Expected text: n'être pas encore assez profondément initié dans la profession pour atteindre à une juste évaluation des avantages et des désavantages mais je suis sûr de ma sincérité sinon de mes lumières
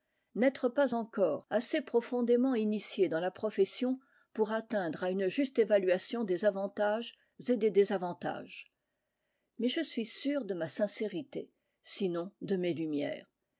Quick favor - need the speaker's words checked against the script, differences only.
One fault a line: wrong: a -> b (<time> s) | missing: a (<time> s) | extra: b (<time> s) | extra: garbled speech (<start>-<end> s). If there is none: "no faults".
no faults